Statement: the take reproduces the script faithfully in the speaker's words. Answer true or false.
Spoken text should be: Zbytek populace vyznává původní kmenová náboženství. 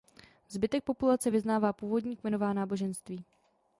true